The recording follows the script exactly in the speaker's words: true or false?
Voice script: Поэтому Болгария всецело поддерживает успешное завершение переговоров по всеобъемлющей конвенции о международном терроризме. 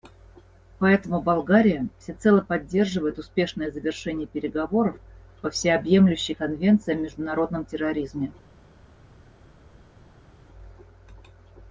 true